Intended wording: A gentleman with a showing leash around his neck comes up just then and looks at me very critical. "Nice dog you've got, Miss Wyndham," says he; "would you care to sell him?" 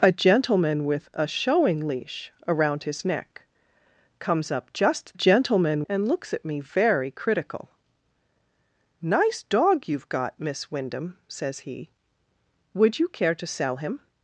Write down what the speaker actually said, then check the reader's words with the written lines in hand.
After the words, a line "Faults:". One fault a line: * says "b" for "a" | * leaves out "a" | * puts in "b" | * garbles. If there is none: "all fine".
A gentleman with a showing leash around his neck comes up just gentleman and looks at me very critical. "Nice dog you've got, Miss Wyndham," says he; "would you care to sell him?"
Faults:
* says "gentleman" for "then"